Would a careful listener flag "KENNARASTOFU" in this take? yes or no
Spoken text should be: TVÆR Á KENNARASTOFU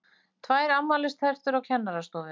no